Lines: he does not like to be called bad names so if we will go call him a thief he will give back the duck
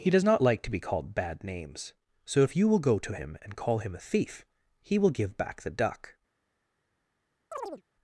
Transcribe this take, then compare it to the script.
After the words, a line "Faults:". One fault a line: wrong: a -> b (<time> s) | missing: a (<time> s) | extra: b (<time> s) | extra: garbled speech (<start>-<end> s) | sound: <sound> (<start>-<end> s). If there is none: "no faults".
he does not like to be called bad names so if you will go to him and call him a thief he will give back the duck
Faults:
wrong: we -> you (2.5 s)
extra: to him and (3.0 s)
sound: chirp (7.5-7.8 s)